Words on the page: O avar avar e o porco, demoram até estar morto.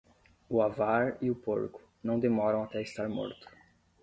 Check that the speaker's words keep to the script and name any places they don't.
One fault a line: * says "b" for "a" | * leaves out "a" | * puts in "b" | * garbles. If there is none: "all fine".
* leaves out "avar"
* puts in "não"